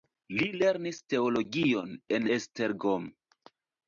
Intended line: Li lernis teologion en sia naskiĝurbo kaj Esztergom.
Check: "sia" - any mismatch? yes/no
yes